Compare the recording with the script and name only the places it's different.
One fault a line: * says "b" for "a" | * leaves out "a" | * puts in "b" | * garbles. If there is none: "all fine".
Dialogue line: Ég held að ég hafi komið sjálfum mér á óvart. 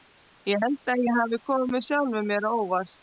all fine